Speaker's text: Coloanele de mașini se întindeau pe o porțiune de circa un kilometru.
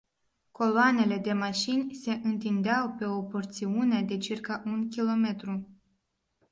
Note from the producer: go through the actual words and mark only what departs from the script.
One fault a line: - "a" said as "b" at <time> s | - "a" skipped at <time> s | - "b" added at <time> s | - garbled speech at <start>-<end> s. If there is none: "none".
none